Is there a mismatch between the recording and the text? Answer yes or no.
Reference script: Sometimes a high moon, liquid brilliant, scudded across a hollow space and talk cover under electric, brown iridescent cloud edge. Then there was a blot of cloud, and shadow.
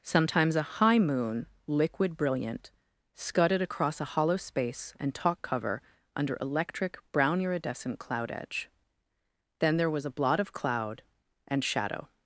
no